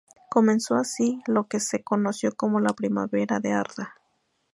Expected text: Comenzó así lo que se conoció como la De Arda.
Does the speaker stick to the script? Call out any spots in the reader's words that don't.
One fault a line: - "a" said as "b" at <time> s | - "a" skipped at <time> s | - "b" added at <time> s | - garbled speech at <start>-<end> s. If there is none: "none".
- "Primavera" added at 2.7 s